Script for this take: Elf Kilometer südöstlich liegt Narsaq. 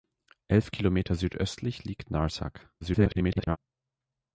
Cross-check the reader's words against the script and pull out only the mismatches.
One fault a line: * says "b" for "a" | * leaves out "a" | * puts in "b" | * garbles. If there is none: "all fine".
* garbles